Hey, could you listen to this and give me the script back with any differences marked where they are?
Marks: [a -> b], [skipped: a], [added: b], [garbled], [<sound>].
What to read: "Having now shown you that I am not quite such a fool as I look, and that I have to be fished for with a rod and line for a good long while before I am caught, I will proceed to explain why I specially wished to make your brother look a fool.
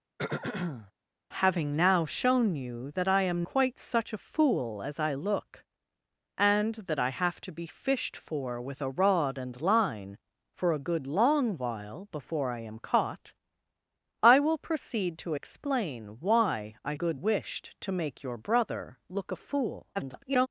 [throat clearing] "Having now shown you that I am [skipped: not] quite such a fool as I look, and that I have to be fished for with a rod and line for a good long while before I am caught, I will proceed to explain why I [specially -> good] wished to make your brother look a fool. [garbled]